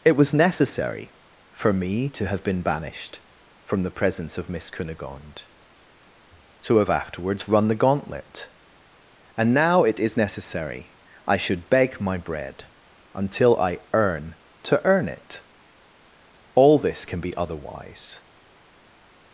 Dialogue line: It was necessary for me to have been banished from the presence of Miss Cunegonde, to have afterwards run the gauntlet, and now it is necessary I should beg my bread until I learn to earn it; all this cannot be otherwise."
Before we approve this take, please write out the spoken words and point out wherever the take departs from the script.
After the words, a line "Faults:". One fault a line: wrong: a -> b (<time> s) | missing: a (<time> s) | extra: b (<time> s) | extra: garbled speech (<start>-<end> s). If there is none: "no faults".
It was necessary for me to have been banished from the presence of Miss Cunegonde, to have afterwards run the gauntlet, and now it is necessary I should beg my bread until I earn to earn it; all this can be otherwise."
Faults:
wrong: learn -> earn (13.9 s)
wrong: cannot -> can (17.1 s)